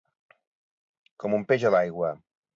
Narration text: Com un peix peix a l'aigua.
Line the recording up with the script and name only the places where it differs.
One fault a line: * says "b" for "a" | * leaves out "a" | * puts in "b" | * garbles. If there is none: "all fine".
* leaves out "peix"